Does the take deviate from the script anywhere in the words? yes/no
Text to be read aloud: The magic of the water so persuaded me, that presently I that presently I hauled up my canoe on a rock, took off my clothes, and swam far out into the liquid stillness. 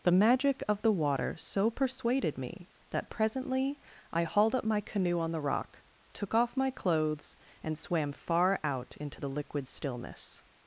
yes